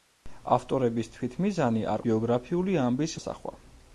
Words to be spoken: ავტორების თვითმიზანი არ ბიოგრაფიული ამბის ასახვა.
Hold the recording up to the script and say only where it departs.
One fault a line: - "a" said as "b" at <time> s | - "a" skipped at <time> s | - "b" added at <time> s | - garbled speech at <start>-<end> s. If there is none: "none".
none